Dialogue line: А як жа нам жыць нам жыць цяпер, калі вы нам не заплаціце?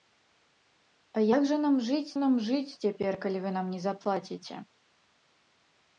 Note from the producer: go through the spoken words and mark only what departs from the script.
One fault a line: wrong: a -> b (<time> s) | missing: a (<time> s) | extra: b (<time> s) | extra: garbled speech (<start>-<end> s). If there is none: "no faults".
no faults